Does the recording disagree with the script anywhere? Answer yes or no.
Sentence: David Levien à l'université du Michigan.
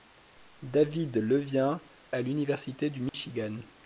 no